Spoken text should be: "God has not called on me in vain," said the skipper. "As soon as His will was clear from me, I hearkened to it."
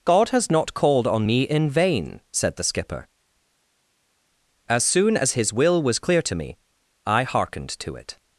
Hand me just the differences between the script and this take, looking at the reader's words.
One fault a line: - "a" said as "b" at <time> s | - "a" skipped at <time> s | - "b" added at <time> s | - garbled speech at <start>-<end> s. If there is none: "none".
- "from" said as "to" at 6.2 s